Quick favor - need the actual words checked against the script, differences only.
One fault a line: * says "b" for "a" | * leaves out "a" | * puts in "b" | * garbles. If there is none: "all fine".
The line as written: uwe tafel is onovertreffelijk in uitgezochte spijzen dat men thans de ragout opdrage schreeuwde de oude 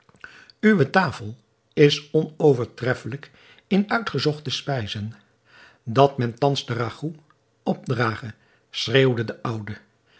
all fine